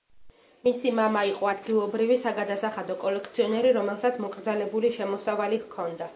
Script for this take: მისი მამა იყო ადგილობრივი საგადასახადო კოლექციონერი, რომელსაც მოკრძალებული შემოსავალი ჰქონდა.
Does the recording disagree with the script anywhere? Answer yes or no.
no